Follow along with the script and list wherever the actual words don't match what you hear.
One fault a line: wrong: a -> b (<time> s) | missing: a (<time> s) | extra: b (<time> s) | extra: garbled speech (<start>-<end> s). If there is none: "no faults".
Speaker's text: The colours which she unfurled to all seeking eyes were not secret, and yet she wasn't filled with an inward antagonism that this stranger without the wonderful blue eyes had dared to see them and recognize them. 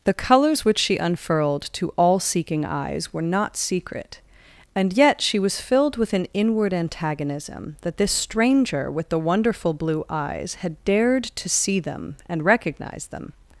wrong: wasn't -> was (5.4 s)
wrong: without -> with (8.9 s)